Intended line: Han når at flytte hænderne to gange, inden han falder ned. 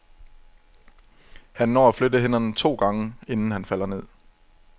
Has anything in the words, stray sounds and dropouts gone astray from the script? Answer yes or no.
no